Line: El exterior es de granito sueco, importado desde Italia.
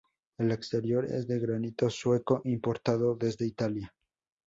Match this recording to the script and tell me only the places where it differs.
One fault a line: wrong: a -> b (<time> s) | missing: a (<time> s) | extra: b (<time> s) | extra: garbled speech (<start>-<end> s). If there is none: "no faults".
no faults